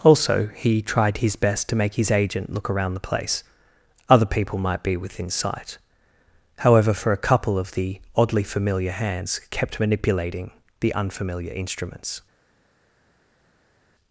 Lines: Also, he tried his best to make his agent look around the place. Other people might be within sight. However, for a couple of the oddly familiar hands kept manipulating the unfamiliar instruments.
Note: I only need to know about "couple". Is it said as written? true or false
true